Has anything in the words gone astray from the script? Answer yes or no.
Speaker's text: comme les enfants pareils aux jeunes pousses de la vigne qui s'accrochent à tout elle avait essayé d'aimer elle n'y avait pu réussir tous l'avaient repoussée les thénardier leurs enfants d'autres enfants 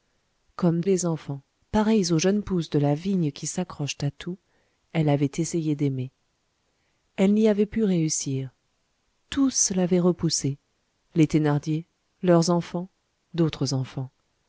no